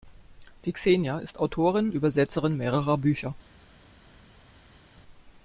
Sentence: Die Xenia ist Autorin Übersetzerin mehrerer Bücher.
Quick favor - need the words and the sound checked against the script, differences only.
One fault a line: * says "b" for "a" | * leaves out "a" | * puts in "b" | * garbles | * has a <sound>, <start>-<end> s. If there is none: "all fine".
all fine